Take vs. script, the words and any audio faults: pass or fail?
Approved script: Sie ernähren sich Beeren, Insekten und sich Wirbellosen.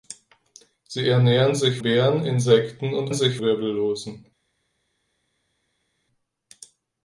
pass